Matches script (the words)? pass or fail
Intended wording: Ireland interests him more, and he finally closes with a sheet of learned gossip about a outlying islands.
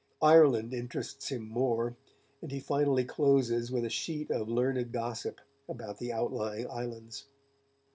fail